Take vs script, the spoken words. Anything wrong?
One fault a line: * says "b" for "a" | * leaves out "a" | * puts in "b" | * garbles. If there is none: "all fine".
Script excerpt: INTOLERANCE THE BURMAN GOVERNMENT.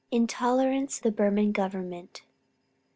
all fine